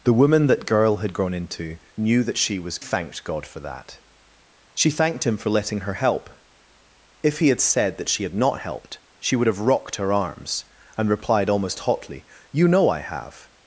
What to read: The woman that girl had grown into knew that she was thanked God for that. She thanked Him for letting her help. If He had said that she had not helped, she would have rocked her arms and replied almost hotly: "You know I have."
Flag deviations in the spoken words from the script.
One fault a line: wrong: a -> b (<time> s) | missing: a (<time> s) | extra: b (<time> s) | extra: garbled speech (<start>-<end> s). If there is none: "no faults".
no faults